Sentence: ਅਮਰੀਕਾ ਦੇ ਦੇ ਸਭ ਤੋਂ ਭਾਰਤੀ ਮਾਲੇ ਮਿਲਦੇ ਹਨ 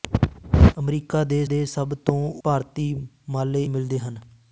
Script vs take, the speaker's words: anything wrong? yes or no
no